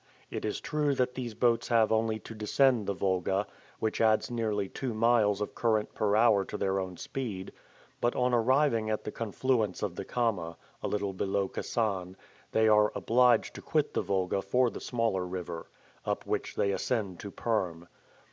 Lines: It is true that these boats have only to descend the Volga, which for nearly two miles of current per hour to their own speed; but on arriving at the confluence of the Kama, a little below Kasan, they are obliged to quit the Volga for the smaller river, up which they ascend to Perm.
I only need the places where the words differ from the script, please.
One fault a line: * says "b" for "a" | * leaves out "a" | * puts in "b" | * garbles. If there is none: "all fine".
* says "adds" for "for"